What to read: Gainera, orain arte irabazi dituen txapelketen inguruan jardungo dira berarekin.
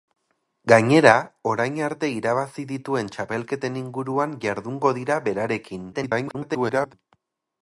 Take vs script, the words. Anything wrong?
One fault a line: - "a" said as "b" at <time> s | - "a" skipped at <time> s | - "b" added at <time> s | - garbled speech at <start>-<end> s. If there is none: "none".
- garbled speech at 5.9-6.9 s